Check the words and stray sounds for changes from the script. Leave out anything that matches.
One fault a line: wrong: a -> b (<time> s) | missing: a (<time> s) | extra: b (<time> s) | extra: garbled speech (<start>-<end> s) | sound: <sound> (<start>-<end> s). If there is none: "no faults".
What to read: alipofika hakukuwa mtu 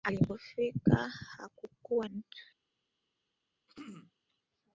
sound: throat clearing (3.7-4.1 s)